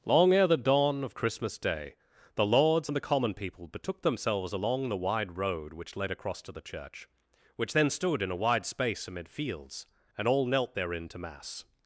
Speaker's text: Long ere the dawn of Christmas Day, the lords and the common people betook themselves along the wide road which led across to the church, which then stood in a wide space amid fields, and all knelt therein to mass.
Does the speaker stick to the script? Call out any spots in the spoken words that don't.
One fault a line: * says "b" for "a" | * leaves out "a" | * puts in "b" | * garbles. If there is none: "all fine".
all fine